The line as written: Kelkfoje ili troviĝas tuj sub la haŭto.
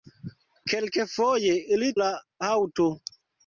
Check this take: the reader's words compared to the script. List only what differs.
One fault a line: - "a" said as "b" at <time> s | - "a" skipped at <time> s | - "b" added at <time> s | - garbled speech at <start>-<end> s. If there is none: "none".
- "troviĝas tuj sub" skipped at 1.9 s